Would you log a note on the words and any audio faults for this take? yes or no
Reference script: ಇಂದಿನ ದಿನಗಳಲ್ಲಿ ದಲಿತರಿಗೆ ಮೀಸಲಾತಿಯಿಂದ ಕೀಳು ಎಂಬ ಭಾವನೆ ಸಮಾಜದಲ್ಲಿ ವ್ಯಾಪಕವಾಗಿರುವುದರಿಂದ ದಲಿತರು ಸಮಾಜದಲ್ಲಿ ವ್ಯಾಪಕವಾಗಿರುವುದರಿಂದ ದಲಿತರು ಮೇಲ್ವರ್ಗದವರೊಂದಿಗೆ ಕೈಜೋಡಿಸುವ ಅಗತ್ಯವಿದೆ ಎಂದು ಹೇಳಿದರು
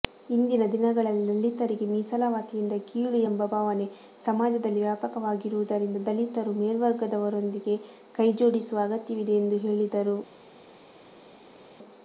yes